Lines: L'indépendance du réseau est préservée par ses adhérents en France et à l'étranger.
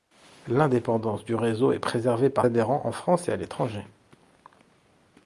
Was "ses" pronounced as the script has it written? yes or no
no